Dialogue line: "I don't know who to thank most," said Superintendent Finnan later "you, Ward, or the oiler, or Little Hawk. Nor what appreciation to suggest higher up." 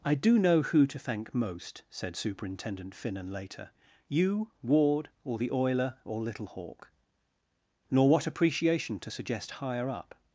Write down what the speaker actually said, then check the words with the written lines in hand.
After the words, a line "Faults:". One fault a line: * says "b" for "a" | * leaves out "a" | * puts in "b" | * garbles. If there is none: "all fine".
"I do know who to thank most," said Superintendent Finnan later "you, Ward, or the oiler, or Little Hawk. Nor what appreciation to suggest higher up."
Faults:
* says "do" for "don't"